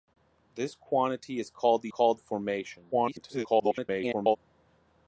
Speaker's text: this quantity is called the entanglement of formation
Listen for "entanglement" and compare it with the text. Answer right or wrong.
wrong